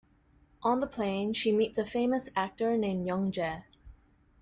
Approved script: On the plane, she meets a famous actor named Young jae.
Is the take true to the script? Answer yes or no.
yes